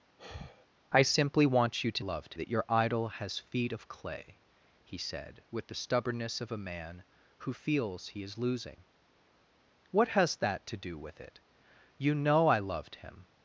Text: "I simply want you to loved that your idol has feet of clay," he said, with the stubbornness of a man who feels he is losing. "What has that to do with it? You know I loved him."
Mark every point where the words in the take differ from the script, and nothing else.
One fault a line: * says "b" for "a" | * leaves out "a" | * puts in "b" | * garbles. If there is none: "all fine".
all fine